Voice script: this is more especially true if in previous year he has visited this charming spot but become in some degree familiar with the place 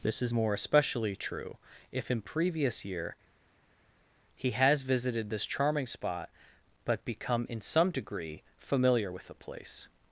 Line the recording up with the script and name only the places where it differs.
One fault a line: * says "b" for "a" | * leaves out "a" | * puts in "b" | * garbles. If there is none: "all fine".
all fine